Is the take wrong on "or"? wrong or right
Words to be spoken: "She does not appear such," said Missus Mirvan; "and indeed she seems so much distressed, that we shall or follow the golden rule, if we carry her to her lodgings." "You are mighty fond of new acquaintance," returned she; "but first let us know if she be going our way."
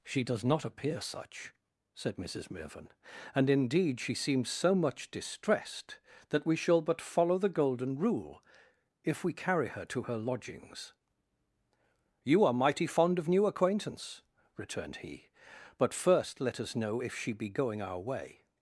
wrong